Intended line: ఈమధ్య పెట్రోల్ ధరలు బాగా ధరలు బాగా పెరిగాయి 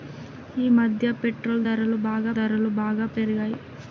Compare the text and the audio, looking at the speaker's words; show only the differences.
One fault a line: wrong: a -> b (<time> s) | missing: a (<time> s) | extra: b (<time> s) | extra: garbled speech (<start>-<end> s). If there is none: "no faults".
no faults